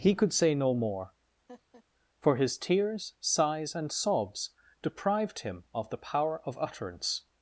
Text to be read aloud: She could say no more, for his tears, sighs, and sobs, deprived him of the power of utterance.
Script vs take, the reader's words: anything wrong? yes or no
yes